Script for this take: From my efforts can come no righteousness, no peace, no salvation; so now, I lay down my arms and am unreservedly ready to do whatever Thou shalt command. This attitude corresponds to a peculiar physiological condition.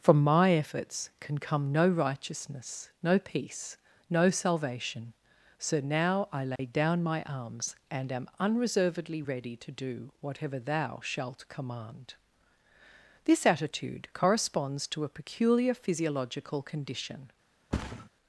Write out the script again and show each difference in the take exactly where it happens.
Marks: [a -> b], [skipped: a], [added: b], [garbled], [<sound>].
From my efforts can come no righteousness, no peace, no salvation; so now, I lay [dropout] down my arms and am unreservedly ready to do whatever Thou shalt command. This attitude corresponds to a peculiar physiological condition. [thud]